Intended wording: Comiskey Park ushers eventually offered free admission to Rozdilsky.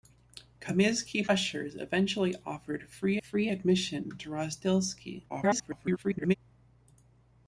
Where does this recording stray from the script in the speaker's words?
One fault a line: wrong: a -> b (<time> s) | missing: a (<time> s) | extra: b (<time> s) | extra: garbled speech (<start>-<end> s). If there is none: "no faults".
missing: Park (1.3 s)
extra: free (3.2 s)
extra: garbled speech (5.3-6.3 s)